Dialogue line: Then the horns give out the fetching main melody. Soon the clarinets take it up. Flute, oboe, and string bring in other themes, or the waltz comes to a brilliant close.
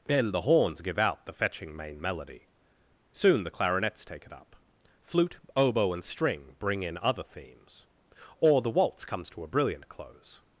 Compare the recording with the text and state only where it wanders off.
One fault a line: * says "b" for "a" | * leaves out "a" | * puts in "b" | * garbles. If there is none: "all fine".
all fine